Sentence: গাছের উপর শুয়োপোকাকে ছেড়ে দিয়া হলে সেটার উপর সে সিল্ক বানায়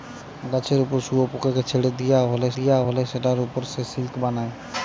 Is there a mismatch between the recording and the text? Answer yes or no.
yes